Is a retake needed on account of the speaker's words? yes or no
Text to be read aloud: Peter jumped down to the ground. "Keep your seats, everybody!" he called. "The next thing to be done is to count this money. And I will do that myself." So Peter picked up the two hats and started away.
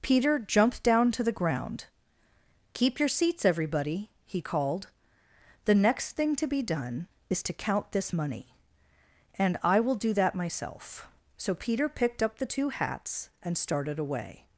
no